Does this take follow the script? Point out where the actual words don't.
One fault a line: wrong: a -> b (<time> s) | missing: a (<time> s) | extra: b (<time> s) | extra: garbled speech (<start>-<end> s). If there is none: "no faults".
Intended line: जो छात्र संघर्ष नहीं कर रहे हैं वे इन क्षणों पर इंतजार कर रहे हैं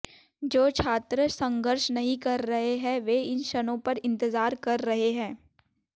no faults